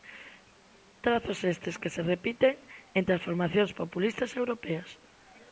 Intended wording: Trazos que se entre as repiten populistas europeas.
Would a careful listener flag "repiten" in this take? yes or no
yes